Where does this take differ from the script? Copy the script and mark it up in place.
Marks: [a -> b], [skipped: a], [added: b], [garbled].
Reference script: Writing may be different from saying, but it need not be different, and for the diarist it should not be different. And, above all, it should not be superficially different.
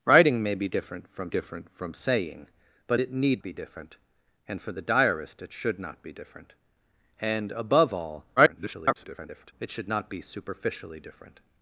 Writing may be different from [added: different from] saying, but it need [skipped: not] be different, and for the diarist it should not be different. And, above all, [garbled] it should not be superficially different.